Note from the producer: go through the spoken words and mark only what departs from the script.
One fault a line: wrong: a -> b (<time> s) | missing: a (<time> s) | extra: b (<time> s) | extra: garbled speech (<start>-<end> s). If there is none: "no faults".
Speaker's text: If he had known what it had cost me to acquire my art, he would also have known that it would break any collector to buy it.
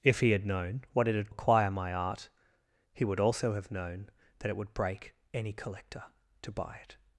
missing: cost me to (1.3 s)